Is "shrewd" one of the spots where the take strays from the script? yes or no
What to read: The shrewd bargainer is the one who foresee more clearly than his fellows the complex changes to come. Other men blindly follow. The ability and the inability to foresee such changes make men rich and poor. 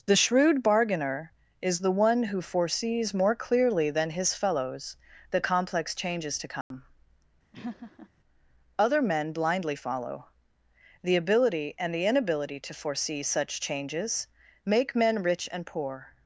no